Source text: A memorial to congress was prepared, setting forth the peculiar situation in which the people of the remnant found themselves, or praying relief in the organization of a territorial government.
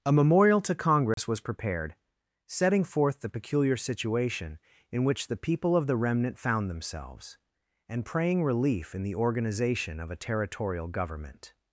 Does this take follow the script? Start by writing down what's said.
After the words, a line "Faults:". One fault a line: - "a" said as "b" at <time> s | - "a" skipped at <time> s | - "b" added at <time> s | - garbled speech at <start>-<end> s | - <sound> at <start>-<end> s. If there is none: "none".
A memorial to congress was prepared, setting forth the peculiar situation in which the people of the remnant found themselves, and praying relief in the organization of a territorial government.
Faults:
- dropout at 1.1-1.2 s
- "or" said as "and" at 7.9 s